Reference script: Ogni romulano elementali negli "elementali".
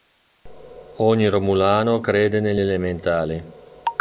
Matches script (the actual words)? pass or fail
fail